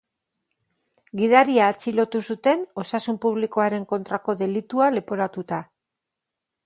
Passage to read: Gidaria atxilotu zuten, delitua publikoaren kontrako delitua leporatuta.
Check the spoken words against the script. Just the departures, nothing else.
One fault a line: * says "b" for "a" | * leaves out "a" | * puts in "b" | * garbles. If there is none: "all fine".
* says "osasun" for "delitua"